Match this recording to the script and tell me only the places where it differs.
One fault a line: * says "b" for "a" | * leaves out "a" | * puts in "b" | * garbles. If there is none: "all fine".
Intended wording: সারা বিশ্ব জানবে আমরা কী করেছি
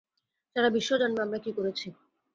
all fine